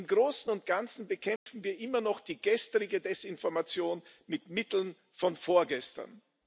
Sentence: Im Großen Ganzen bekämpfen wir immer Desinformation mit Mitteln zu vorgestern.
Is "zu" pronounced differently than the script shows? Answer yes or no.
yes